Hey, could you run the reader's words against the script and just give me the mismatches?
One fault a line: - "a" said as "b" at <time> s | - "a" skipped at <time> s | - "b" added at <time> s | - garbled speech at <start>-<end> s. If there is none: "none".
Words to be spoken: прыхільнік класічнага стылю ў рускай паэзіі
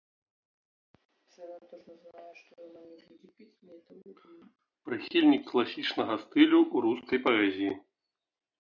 none